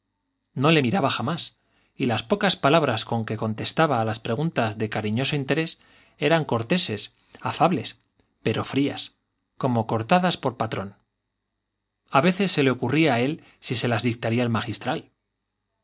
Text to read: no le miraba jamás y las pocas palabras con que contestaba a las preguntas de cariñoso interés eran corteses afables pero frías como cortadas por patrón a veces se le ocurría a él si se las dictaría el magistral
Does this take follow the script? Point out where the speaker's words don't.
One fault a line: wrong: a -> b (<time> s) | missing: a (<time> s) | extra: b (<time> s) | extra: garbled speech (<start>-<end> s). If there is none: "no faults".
no faults